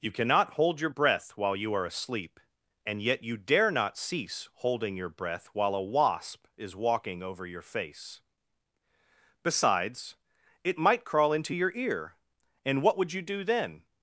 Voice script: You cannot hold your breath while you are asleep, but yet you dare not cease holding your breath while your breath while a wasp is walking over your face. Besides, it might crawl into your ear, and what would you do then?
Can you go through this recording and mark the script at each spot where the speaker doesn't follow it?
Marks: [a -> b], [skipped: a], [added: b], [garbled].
You cannot hold your breath while you are asleep, [but -> and] yet you dare not cease holding your breath while [skipped: your breath while] a wasp is walking over your face. Besides, it might crawl into your ear, and what would you do then?